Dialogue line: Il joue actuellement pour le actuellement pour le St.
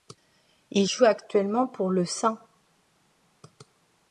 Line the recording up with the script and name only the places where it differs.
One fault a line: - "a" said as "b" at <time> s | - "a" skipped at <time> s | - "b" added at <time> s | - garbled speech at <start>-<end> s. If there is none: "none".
- "actuellement pour le" skipped at 2.1 s